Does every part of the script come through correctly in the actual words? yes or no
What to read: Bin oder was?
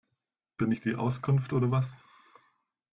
no